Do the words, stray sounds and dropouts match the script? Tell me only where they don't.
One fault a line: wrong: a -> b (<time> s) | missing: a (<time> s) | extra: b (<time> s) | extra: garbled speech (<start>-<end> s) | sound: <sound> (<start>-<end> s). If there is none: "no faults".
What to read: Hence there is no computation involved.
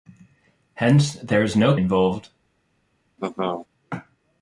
missing: computation (1.8 s)
sound: laugh (3.2-3.7 s)